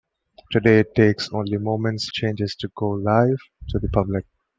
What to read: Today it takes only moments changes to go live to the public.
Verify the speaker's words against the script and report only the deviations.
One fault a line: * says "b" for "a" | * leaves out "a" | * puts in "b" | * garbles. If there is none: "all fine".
all fine